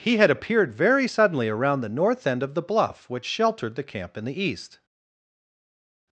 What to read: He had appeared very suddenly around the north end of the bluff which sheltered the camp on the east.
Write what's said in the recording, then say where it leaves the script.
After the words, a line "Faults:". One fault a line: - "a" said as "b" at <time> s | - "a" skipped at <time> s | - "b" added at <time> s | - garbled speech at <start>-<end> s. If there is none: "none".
He had appeared very suddenly around the north end of the bluff which sheltered the camp in the east.
Faults:
- "on" said as "in" at 4.2 s